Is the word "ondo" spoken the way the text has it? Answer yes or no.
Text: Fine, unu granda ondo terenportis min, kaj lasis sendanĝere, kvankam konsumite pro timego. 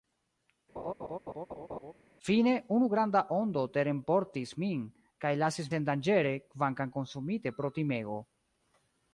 yes